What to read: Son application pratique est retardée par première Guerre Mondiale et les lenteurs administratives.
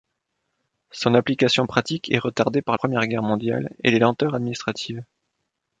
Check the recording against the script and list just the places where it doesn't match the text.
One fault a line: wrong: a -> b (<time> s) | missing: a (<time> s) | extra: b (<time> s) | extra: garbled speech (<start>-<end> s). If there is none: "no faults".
no faults